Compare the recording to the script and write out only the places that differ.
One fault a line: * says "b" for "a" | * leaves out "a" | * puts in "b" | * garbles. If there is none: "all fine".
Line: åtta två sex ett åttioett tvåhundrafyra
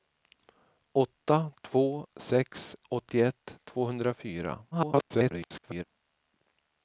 * leaves out "ett"
* garbles